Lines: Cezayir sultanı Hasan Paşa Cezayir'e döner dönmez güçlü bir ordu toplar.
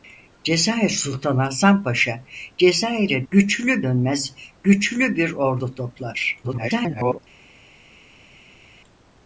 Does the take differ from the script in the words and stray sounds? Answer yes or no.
yes